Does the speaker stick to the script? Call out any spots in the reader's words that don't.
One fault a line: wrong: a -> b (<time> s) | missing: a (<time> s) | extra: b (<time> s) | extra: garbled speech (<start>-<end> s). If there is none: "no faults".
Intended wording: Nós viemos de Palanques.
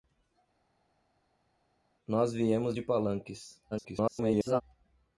extra: garbled speech (3.7-4.6 s)